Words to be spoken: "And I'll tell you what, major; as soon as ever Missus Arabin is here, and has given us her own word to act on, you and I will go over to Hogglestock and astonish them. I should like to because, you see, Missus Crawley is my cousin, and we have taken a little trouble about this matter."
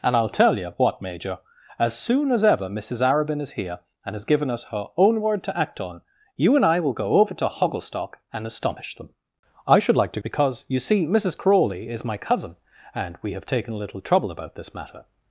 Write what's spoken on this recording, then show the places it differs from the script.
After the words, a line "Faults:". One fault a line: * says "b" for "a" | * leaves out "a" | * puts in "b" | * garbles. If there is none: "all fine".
"And I'll tell you what, major; as soon as ever Missus Arabin is here, and has given us her own word to act on, you and I will go over to Hogglestock and astonish them. I should like to because, you see, Missus Crawley is my cousin, and we have taken a little trouble about this matter."
Faults:
all fine